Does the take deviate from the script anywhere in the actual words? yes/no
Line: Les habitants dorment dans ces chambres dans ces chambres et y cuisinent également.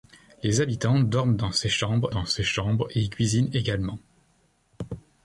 no